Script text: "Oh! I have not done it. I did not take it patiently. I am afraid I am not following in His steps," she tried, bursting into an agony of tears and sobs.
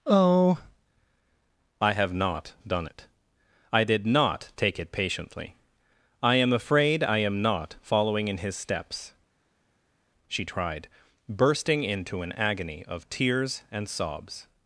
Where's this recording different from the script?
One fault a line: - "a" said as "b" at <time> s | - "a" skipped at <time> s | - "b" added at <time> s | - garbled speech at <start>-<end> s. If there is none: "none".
none